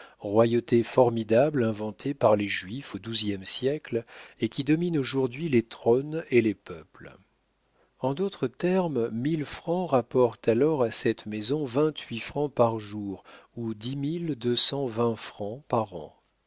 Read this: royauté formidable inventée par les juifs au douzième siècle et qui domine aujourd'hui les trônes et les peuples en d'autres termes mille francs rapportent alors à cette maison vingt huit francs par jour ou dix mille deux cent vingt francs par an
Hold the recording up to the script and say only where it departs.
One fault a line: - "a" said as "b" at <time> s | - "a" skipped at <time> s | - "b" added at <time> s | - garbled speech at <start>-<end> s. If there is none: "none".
none